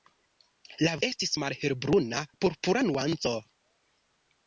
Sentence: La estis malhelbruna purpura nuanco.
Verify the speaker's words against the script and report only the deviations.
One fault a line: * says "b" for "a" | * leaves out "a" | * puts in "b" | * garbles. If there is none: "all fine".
all fine